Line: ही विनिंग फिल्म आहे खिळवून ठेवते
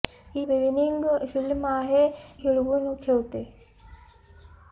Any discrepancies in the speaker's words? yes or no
no